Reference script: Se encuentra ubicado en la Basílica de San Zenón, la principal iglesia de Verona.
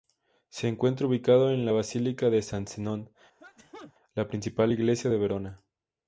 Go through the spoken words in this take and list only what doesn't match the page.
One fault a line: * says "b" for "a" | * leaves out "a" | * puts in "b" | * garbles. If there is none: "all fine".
all fine